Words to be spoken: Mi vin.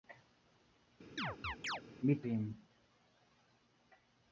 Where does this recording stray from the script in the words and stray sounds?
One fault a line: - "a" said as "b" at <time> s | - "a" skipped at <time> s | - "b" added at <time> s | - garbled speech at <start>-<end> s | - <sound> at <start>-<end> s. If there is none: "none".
- chirp at 1.2-1.8 s